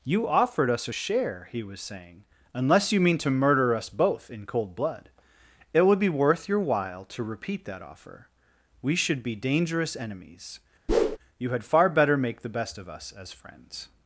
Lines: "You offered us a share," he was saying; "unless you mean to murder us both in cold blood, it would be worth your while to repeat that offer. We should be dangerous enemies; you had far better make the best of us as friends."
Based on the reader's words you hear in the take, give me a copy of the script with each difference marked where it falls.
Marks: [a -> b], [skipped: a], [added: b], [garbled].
"You offered us a share," he was saying; "unless you mean to murder us both in cold blood, it would be worth your while to repeat that offer. We should be dangerous enemies; you had far better make the best of us as friends."